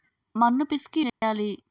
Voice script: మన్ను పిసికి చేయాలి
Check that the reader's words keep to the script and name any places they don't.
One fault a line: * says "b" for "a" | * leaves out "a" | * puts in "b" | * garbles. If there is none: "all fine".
all fine